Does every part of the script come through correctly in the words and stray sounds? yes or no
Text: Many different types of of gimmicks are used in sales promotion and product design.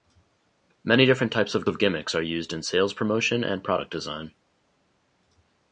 yes